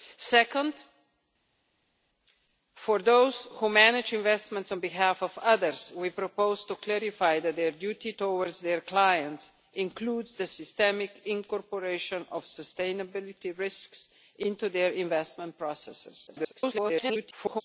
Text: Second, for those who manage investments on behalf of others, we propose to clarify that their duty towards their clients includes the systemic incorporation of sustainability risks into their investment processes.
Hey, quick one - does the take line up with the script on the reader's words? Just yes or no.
no